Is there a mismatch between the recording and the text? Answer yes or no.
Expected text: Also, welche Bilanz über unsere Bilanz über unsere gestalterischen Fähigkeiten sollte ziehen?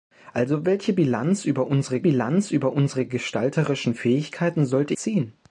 no